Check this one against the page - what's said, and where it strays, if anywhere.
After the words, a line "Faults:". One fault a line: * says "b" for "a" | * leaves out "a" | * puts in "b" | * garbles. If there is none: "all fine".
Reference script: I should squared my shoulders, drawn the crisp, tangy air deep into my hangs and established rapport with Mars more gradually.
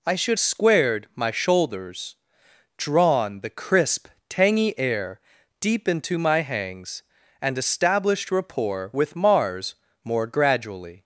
I should squared my shoulders, drawn the crisp, tangy air deep into my hangs and established rapport with Mars more gradually.
Faults:
all fine